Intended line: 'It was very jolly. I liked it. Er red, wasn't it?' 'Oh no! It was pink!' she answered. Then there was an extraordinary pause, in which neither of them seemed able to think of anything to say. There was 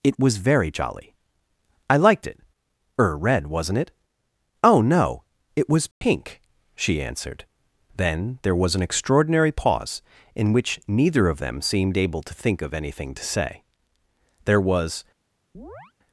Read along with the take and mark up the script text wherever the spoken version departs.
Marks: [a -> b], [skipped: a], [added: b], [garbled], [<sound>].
'It was very jolly. I liked it. Er red, wasn't it?' 'Oh no! It was pink!' [dropout] she answered. Then there was an extraordinary pause, in which neither of them seemed able to think of anything to say. There was [chirp]